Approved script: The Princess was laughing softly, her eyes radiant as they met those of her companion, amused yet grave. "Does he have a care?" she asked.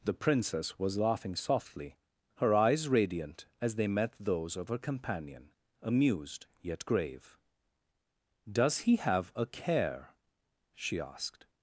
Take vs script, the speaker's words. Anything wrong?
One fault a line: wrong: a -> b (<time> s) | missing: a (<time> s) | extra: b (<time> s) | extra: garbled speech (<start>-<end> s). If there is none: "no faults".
no faults